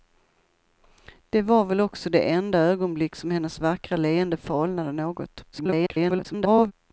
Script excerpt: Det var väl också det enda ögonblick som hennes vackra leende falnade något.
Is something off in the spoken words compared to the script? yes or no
yes